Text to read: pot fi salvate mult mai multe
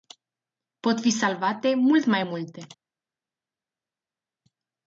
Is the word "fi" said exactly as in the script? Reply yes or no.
yes